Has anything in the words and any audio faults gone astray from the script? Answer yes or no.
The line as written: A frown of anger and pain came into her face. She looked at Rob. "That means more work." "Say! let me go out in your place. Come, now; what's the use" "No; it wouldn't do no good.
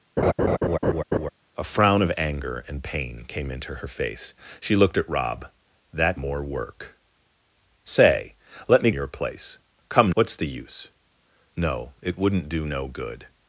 yes